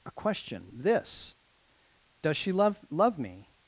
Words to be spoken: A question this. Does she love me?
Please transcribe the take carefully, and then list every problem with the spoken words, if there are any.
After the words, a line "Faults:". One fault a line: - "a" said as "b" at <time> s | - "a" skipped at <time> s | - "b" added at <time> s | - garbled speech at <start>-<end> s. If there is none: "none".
A question this. Does she love love me?
Faults:
- "love" added at 2.9 s